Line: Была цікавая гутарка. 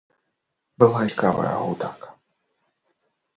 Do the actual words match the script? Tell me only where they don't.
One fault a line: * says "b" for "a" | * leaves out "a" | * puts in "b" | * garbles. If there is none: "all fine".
all fine